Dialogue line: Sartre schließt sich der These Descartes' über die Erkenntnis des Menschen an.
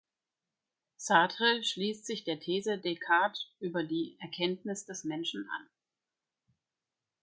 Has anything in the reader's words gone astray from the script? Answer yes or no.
no